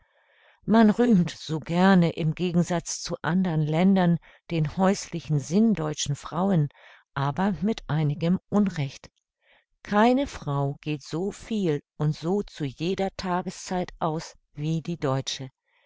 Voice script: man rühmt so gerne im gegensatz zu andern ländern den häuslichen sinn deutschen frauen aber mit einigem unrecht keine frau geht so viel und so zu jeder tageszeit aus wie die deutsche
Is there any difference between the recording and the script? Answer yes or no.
no